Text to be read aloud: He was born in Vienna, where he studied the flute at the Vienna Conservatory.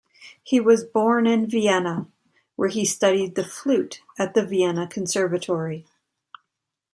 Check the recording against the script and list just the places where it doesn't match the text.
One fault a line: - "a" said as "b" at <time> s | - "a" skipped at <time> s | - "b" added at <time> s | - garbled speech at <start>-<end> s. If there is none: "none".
none